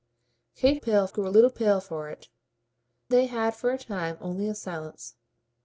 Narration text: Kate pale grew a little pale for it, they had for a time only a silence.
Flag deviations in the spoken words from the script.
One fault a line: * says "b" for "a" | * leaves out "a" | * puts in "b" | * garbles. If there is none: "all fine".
all fine